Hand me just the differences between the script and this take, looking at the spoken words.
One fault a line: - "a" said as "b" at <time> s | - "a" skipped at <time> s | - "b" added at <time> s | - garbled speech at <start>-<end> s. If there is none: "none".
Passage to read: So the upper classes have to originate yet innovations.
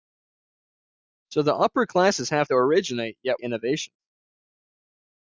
none